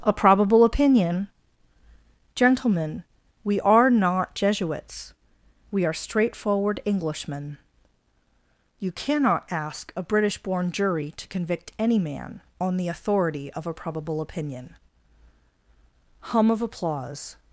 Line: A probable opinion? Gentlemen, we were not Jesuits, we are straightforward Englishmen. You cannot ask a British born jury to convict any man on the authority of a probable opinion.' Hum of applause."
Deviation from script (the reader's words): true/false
true